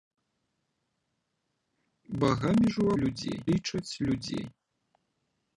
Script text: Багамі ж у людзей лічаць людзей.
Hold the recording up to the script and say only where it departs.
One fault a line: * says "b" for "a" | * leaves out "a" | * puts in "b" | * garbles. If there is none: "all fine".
all fine